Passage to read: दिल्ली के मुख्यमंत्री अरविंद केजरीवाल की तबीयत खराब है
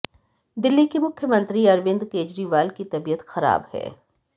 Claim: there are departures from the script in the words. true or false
false